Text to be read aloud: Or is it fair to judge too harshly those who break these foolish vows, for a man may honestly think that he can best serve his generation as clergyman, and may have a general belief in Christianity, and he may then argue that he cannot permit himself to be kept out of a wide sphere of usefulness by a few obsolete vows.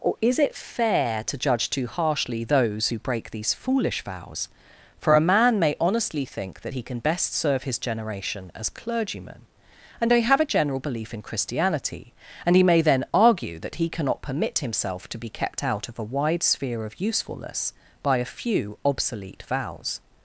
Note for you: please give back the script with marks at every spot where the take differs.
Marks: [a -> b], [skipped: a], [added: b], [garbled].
Or is it fair to judge too harshly those who break these foolish vows, for a man may honestly think that he can best serve his generation as clergyman, and may have a general belief in Christianity, and he may then argue that he cannot permit himself to be kept out of a wide sphere of usefulness by a few obsolete vows.